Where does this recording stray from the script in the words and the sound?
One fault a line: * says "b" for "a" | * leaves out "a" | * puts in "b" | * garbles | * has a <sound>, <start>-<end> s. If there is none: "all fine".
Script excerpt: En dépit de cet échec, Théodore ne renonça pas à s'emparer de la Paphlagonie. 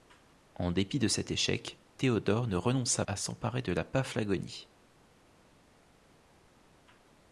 * leaves out "pas"